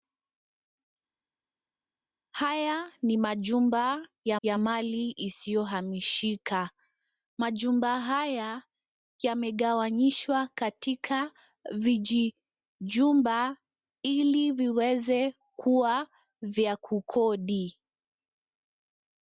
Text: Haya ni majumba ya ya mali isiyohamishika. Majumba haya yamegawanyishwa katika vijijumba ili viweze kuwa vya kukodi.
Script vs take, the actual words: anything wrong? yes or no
no